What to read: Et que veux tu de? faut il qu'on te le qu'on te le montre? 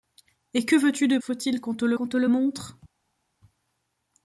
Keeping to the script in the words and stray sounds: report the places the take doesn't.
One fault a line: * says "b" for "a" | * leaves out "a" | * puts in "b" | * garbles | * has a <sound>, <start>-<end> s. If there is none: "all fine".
all fine